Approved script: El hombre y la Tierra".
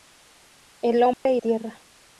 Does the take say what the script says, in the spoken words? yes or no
no